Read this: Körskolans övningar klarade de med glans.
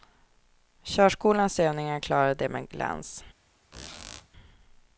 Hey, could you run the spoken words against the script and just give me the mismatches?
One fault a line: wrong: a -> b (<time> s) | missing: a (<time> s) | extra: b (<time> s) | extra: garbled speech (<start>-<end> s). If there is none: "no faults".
no faults